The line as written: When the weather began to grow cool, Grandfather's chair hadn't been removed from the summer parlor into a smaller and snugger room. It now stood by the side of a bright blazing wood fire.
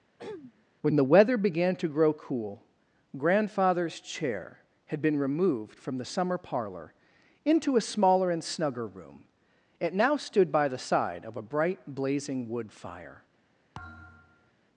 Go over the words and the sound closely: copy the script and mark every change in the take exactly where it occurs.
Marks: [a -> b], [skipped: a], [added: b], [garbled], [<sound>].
[throat clearing] When the weather began to grow cool, Grandfather's chair [hadn't -> had] been removed from the summer parlor into a smaller and snugger room. It now stood by the side of a bright blazing wood fire. [thud]